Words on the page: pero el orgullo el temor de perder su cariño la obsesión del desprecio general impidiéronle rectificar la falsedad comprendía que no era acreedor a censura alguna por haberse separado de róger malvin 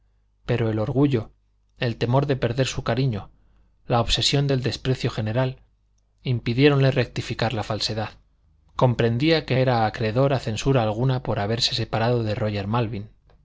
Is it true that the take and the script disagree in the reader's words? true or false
true